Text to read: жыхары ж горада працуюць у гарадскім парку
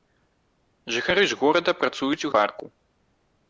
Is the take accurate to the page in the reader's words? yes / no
no